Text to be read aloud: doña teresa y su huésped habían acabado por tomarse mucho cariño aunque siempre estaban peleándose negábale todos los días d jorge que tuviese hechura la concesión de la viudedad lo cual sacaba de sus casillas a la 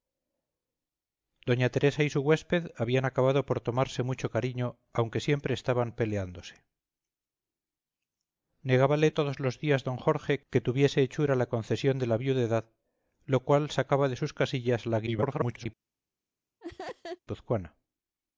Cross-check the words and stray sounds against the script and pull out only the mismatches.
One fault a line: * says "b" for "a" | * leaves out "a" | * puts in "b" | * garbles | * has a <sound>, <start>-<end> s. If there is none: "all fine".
* garbles
* has a laugh, 16.6-17.2 s